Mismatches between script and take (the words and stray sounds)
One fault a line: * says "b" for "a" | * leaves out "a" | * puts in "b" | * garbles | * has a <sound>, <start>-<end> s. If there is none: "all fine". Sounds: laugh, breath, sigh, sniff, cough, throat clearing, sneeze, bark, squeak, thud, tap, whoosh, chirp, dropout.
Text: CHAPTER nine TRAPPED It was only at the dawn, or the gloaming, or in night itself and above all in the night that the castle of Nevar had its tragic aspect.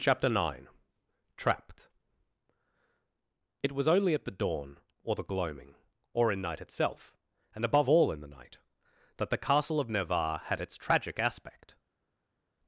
all fine